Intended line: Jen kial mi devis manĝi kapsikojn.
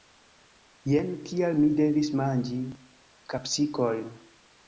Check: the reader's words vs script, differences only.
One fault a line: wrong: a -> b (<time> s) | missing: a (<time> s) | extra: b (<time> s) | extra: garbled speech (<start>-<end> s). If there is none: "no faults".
no faults